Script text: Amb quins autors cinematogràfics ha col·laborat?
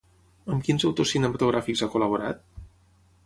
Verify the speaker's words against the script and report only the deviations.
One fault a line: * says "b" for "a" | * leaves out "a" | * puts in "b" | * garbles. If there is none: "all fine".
all fine